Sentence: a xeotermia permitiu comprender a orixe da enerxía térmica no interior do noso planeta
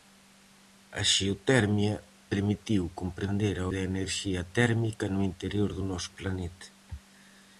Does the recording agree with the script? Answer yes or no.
no